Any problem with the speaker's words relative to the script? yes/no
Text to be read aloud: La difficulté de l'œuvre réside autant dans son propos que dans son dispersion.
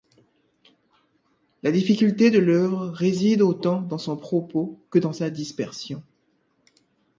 yes